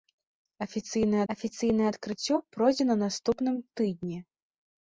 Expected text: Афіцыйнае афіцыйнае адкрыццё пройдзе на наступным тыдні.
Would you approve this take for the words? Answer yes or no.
yes